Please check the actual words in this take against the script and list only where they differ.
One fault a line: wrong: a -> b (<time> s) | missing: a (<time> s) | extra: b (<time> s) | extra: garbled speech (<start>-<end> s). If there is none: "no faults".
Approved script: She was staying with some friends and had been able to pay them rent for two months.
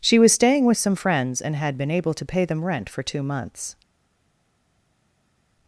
no faults